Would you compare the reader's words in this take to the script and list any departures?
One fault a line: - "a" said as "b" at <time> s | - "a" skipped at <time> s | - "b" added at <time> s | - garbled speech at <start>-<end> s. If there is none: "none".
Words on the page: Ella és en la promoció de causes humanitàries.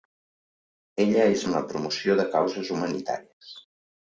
none